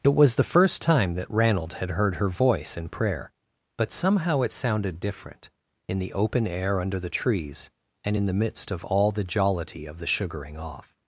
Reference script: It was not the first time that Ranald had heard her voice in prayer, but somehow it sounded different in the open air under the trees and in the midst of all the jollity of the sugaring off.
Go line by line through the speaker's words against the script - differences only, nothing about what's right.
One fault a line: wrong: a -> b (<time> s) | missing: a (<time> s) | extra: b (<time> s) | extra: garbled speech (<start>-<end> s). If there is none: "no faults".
missing: not (0.3 s)